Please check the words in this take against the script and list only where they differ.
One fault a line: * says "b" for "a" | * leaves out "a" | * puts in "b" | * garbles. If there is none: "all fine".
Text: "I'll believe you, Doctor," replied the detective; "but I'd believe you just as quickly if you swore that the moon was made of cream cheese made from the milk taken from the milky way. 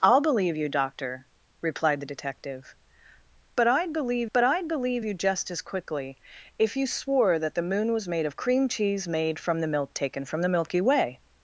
* puts in "but I'd believe"